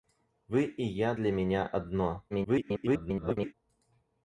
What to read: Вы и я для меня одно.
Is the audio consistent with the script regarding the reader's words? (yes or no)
no